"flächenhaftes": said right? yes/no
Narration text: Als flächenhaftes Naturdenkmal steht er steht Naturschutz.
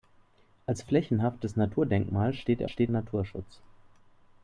yes